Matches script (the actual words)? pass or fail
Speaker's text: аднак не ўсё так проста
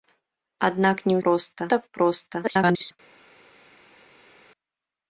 fail